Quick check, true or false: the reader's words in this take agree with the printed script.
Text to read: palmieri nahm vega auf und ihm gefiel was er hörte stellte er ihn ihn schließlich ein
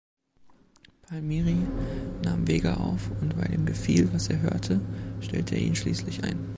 false